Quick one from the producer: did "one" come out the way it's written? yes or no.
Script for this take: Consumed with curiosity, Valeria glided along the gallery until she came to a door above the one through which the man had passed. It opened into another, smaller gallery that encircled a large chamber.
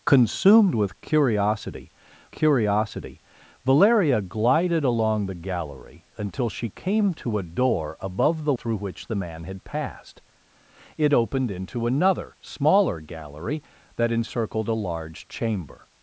no